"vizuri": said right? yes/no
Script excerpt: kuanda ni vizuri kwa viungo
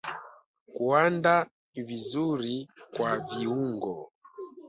yes